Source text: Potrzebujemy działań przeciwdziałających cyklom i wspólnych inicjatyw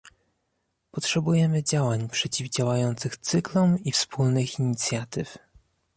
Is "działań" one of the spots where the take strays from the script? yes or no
no